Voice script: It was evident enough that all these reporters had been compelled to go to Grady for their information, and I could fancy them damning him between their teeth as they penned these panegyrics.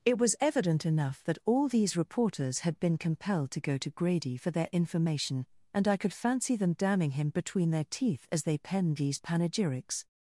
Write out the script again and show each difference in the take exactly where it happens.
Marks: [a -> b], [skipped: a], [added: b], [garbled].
It was evident enough that all these reporters had been compelled to go to Grady for their information, and I could fancy them damning him between their teeth as they penned these panegyrics.